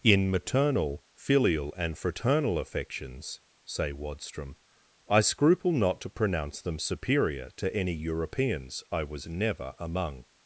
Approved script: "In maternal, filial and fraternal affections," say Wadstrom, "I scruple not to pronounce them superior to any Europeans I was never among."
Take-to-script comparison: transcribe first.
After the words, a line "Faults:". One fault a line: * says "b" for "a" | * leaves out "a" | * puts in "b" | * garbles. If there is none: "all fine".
"In maternal, filial and fraternal affections," say Wadstrom, "I scruple not to pronounce them superior to any Europeans I was never among."
Faults:
all fine